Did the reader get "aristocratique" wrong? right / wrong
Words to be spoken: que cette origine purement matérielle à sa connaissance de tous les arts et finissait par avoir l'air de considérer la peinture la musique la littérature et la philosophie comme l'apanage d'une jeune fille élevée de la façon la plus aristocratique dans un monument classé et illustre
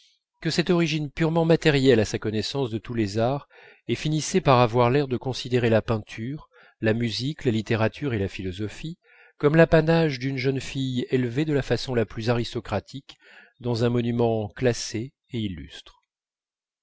right